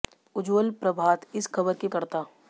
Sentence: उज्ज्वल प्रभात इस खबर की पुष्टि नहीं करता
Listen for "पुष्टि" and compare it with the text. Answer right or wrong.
wrong